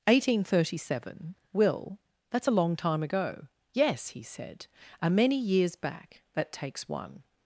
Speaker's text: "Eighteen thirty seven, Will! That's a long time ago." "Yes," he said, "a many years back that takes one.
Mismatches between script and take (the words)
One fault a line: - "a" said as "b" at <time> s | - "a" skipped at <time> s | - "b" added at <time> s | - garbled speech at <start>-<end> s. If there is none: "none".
none